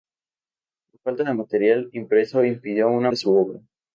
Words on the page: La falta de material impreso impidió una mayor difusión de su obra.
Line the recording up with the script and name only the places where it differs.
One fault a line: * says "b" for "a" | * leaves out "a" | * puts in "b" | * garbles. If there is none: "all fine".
* leaves out "mayor difusión"